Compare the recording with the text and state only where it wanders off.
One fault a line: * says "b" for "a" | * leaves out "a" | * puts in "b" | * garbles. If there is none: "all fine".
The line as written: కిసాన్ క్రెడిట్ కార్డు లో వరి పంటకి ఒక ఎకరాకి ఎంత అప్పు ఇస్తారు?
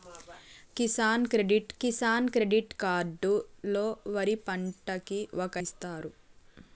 * puts in "కిసాన్ క్రెడిట్"
* leaves out "ఎకరాకి ఎంత అప్పు"